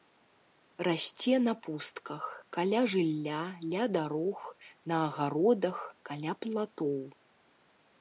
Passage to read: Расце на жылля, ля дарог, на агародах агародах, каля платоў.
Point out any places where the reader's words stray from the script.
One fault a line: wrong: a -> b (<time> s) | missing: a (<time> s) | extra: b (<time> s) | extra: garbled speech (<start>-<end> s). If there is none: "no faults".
extra: пустках каля (1.6 s)
missing: агародах (5.8 s)